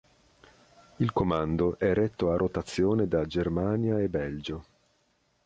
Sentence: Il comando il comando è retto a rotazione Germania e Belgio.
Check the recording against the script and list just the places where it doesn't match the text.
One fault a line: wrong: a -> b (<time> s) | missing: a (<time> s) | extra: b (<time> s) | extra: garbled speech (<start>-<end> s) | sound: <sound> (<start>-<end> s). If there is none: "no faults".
missing: il comando (1.8 s)
extra: da (3.1 s)